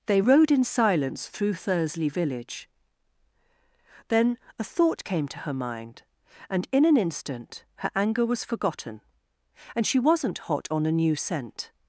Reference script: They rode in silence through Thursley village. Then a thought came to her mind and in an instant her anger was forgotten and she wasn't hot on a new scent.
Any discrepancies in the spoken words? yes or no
no